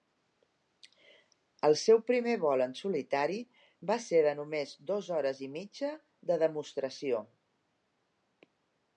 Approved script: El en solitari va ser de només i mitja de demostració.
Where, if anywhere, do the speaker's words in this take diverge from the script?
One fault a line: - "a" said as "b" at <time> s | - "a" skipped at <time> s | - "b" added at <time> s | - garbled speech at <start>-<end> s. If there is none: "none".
- "seu primer vol" added at 1.8 s
- "dos hores" added at 4.9 s